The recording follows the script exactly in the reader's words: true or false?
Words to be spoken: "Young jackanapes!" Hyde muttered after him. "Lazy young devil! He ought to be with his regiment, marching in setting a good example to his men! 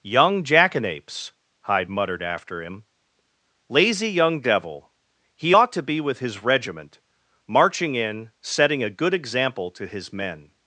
true